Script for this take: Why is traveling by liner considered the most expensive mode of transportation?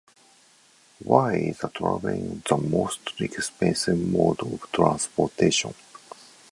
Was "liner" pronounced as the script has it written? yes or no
no